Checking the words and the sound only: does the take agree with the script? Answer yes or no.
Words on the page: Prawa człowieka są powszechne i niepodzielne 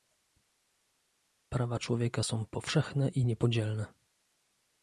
yes